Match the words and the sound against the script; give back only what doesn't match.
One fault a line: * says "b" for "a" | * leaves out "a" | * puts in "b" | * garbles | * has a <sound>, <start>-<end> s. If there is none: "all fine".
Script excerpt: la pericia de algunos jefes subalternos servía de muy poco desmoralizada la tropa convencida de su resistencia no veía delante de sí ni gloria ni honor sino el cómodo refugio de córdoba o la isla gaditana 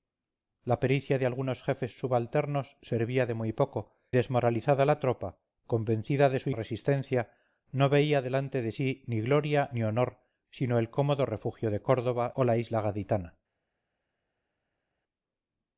all fine